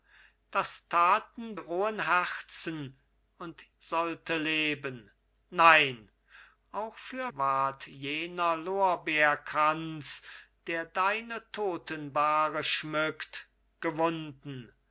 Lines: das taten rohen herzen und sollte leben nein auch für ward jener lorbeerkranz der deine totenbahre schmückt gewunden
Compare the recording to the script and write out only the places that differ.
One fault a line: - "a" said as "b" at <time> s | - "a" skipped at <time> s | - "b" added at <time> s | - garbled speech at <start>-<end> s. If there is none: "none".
none